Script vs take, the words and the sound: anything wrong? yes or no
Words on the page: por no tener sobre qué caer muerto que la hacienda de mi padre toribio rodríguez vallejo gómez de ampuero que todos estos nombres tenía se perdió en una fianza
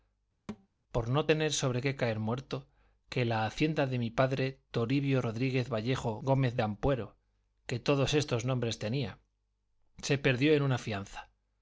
yes